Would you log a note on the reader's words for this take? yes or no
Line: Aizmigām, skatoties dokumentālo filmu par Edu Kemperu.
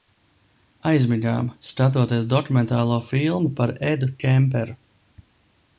no